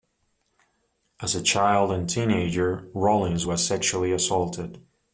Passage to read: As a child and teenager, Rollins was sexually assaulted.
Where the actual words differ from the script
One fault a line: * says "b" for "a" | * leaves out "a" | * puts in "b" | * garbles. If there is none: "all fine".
all fine